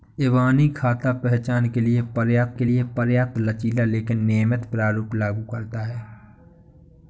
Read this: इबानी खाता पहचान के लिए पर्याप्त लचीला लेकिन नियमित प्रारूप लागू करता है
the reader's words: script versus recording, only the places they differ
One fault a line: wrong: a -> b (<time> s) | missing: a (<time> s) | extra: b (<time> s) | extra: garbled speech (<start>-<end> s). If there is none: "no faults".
extra: के लिए पर्याप्त (2.5 s)